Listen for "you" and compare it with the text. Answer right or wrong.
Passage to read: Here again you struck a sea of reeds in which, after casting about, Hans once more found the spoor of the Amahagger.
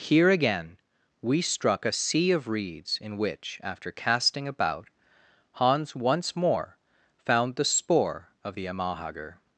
wrong